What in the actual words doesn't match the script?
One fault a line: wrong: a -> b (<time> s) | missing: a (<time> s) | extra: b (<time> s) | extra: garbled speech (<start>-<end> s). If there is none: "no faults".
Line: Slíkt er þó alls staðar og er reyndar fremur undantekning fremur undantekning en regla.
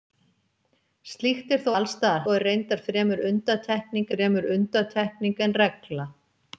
no faults